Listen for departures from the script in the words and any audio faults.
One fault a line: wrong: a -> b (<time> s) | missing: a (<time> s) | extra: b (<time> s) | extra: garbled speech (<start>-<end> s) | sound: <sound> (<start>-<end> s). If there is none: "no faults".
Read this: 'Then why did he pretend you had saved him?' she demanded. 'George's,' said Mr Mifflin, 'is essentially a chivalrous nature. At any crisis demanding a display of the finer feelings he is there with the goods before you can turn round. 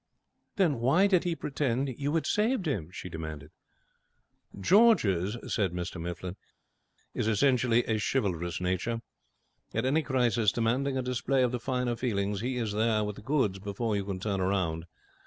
no faults